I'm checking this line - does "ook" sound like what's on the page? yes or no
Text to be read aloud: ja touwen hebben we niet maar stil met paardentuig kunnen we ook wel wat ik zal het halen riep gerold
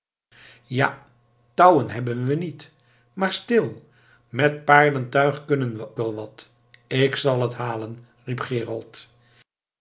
no